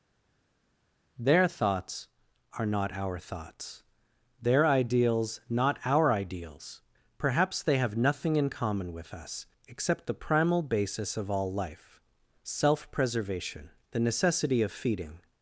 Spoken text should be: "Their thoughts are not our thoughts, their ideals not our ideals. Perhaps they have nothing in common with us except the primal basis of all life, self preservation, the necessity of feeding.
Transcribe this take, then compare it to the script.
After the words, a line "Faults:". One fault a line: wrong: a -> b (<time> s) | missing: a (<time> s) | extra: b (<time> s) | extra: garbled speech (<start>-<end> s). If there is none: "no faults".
"Their thoughts are not our thoughts, their ideals not our ideals. Perhaps they have nothing in common with us except the primal basis of all life, self preservation, the necessity of feeding.
Faults:
no faults